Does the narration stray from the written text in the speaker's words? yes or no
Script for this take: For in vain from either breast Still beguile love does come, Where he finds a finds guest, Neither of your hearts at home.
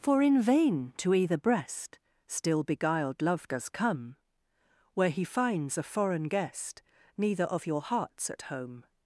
yes